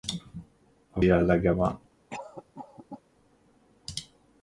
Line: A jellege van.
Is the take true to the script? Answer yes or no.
yes